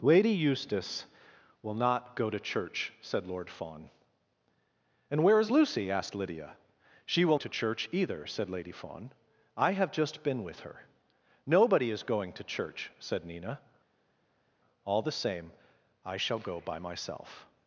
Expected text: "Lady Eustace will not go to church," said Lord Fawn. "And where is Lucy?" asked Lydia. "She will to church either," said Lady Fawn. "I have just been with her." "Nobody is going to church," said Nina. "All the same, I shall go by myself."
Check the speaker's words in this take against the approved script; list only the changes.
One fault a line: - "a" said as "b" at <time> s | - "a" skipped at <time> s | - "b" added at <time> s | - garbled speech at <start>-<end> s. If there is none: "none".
none